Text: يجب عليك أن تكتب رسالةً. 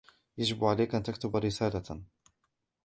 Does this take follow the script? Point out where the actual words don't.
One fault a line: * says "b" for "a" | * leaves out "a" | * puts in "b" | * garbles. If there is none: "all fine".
all fine